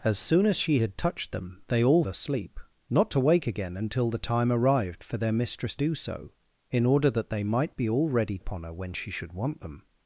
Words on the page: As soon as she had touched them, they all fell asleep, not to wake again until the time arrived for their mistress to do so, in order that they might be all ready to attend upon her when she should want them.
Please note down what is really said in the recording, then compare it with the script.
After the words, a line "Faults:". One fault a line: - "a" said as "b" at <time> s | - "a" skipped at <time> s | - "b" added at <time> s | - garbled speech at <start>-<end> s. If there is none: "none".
As soon as she had touched them, they all asleep, not to wake again until the time arrived for their mistress do so, in order that they might be all ready upon her when she should want them.
Faults:
- "fell" skipped at 2.0 s
- "to" skipped at 5.7 s
- "to attend" skipped at 8.4 s